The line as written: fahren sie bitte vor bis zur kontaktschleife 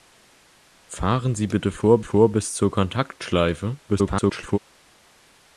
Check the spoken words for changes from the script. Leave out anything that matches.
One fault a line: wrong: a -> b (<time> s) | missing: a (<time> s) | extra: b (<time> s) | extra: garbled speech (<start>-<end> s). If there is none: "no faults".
extra: vor (2.0 s)
extra: garbled speech (3.9-4.6 s)